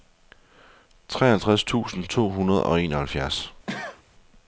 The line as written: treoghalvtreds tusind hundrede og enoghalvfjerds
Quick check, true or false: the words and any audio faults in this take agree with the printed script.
false